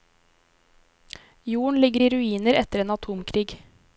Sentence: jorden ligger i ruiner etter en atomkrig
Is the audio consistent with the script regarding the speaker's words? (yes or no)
yes